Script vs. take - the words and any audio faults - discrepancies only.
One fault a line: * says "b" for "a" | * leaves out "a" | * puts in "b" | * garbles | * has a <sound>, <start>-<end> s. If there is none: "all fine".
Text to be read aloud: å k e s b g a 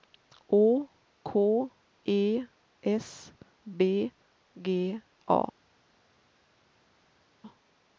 all fine